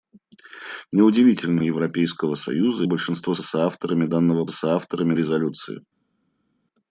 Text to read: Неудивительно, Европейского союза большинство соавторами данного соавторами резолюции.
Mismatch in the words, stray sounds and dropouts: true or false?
false